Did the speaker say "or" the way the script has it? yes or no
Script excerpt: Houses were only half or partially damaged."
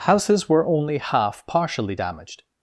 no